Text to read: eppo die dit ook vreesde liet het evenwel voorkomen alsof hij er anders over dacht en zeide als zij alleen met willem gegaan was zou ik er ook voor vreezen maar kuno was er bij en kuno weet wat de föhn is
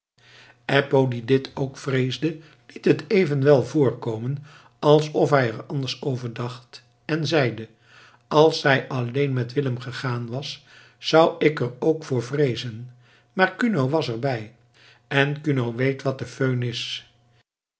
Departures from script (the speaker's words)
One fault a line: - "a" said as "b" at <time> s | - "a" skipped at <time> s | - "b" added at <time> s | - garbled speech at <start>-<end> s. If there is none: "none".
none